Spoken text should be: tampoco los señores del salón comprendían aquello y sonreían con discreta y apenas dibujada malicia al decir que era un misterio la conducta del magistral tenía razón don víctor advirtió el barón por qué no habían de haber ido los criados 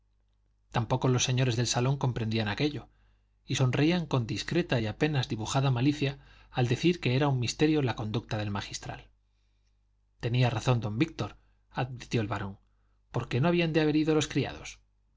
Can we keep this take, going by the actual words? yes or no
yes